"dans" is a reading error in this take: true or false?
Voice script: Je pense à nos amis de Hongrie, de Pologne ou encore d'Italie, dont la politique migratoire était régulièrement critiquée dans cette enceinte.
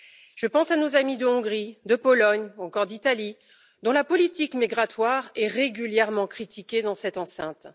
false